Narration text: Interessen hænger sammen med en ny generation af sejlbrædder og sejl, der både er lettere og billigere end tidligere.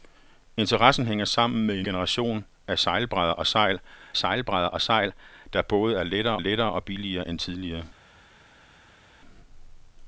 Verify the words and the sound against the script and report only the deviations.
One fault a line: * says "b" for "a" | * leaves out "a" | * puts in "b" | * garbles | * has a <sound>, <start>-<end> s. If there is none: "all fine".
* leaves out "ny"
* puts in "sejlbrædder og sejl"
* puts in "lettere"